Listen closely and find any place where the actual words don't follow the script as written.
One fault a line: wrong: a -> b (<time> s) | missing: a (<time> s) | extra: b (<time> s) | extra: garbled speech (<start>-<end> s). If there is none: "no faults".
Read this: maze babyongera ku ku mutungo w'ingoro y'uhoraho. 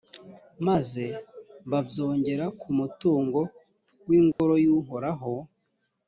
missing: ku (2.7 s)